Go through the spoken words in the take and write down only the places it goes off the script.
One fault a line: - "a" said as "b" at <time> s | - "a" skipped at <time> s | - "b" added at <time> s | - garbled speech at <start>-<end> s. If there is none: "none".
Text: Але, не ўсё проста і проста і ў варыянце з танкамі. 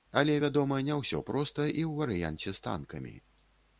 - "вядома" added at 0.4 s
- "проста і" skipped at 1.8 s